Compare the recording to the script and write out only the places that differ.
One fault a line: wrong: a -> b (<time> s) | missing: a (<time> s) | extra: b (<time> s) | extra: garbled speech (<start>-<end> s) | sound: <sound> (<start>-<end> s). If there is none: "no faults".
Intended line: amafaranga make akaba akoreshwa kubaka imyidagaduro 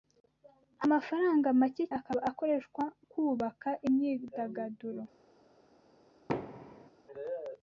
sound: thud (6.3-6.9 s)